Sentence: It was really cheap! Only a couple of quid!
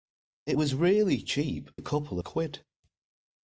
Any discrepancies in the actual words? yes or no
yes